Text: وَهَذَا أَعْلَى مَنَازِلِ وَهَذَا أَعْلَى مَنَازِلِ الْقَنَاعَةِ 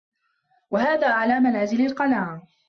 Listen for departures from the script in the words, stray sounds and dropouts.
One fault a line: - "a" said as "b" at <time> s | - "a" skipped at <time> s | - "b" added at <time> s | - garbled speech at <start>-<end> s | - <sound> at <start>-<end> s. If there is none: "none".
- "وَهَذَا أَعْلَى مَنَازِلِ" skipped at 1.9 s